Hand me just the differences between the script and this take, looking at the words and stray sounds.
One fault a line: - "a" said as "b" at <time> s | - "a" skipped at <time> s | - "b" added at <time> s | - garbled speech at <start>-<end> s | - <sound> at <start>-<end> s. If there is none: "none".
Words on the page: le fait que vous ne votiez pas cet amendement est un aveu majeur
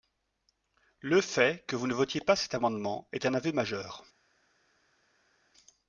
none